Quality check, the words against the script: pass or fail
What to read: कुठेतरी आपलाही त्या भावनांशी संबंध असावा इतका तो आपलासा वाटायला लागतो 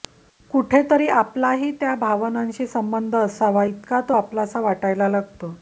pass